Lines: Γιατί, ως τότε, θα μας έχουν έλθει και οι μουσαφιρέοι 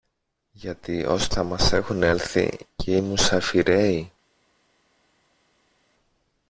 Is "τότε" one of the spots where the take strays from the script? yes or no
yes